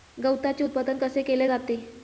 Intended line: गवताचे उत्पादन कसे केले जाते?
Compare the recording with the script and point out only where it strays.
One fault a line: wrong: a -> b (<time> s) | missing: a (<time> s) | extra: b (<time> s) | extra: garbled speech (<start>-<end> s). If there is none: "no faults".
no faults